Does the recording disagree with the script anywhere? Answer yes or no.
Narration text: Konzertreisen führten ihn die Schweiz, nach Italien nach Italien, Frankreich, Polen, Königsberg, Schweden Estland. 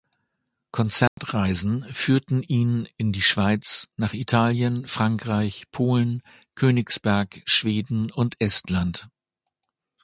yes